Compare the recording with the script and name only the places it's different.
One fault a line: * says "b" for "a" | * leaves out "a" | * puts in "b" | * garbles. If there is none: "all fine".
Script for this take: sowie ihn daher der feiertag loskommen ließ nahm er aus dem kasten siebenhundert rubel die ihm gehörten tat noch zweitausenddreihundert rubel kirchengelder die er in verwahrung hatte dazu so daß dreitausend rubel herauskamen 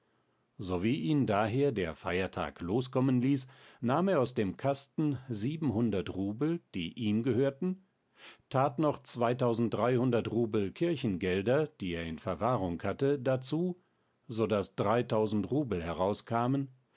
all fine